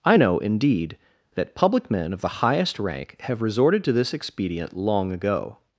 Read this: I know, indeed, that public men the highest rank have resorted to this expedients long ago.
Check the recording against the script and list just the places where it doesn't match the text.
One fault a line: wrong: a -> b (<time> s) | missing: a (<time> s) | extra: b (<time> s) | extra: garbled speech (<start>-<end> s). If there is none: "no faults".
extra: of (2.1 s)
wrong: expedients -> expedient (4.1 s)